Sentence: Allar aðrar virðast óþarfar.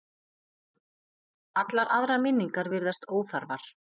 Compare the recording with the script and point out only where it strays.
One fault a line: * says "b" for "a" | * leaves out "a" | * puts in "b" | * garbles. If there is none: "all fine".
* puts in "minningar"